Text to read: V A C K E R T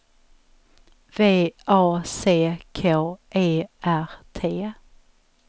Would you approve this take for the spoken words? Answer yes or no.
yes